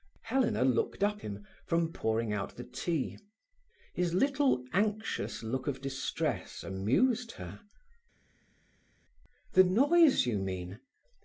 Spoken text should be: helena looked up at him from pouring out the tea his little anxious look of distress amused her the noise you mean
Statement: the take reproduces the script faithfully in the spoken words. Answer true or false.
false